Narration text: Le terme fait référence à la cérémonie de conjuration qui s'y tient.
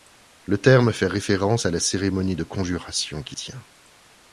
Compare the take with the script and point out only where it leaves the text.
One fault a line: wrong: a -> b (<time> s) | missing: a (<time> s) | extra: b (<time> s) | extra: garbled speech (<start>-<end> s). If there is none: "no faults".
missing: s'y (3.4 s)